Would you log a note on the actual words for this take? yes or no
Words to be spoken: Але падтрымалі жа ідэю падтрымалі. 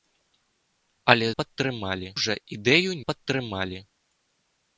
no